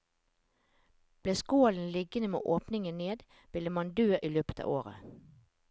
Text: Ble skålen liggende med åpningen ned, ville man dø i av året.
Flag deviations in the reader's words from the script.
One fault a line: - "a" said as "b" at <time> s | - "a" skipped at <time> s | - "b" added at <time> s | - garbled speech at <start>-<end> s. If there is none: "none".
- "løpet" added at 4.3 s